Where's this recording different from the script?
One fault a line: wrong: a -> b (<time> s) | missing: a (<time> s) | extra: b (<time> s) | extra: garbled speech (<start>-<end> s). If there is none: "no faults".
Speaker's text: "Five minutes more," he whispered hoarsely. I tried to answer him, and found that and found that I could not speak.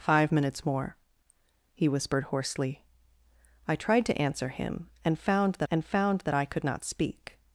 no faults